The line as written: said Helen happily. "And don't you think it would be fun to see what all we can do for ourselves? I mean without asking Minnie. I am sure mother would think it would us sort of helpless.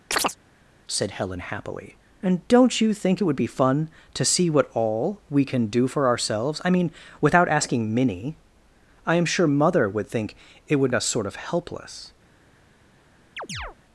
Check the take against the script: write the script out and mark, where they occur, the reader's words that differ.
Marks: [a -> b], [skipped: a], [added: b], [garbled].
said Helen happily. "And don't you think it would be fun to see what all we can do for ourselves? I mean without asking Minnie. I am sure mother would think it would us sort of helpless.